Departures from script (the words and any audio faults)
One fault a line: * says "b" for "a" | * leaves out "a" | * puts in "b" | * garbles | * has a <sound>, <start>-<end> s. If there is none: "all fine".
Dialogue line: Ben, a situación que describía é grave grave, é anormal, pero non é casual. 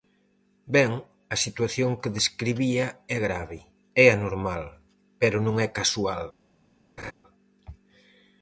* leaves out "grave"
* has a laugh, 7.0-7.1 s